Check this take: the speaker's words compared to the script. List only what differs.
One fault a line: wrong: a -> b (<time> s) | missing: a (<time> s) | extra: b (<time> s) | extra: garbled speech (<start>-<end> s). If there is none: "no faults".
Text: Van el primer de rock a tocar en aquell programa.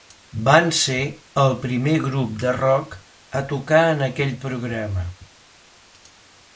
extra: ser (0.8 s)
extra: grup (2.1 s)